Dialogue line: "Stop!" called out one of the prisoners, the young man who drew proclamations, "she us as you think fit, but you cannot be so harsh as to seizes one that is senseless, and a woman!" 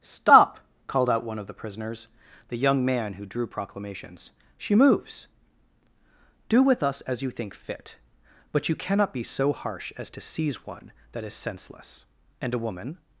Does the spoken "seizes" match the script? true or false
false